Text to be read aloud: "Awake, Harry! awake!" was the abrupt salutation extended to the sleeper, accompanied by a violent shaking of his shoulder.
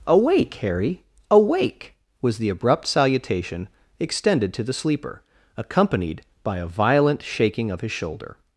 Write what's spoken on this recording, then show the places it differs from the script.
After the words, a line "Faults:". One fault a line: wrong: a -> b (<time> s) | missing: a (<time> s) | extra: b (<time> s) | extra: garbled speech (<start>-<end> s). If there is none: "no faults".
"Awake, Harry! awake!" was the abrupt salutation extended to the sleeper, accompanied by a violent shaking of his shoulder.
Faults:
no faults